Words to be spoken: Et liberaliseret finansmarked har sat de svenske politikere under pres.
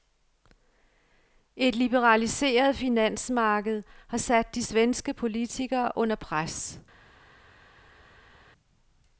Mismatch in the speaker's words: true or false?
false